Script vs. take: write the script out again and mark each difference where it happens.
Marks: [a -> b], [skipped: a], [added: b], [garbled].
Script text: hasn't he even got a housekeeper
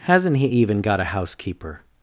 hasn't he even got a housekeeper